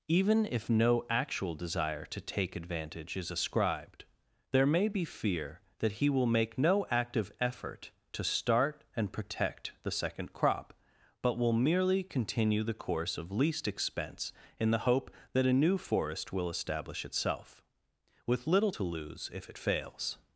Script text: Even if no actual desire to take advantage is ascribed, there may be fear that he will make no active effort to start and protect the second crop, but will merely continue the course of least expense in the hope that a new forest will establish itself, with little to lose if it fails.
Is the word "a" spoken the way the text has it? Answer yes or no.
yes